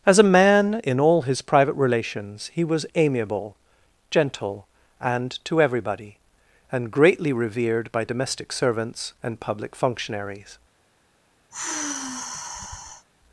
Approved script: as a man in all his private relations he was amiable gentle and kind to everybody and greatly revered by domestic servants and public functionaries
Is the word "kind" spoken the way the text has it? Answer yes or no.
no